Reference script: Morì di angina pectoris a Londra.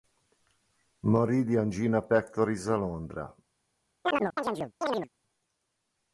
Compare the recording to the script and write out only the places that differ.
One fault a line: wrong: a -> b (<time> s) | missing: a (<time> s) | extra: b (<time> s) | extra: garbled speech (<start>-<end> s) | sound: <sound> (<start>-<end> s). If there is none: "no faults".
sound: chirp (4.0-5.1 s)